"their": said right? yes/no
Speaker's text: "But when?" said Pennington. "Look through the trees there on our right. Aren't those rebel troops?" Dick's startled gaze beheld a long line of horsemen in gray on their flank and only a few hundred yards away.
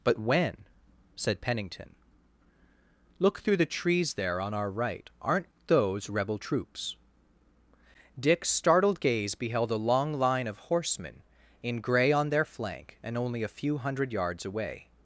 yes